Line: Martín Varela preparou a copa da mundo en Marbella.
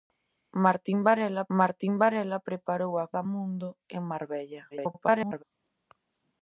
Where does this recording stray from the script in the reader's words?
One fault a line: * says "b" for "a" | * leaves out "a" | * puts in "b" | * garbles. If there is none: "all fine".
* puts in "martín Varela"
* leaves out "copa"
* garbles